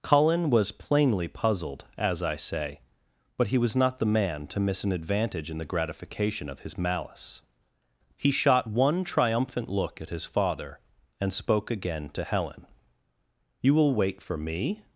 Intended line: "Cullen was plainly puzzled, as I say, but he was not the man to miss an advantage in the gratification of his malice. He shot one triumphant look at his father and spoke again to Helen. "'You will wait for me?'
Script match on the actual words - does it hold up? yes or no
yes